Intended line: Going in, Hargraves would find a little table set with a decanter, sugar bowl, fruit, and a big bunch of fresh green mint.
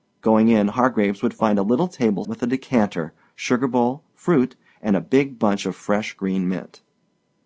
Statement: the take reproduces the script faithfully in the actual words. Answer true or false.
false